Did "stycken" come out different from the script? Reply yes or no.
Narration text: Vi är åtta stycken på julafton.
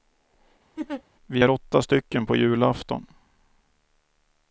no